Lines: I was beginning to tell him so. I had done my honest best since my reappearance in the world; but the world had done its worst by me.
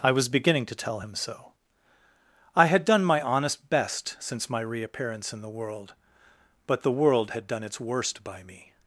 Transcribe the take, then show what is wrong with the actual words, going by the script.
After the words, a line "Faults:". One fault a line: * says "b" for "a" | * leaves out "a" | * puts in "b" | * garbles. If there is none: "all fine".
I was beginning to tell him so. I had done my honest best since my reappearance in the world; but the world had done its worst by me.
Faults:
all fine